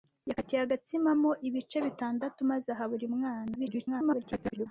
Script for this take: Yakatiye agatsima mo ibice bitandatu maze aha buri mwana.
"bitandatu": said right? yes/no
yes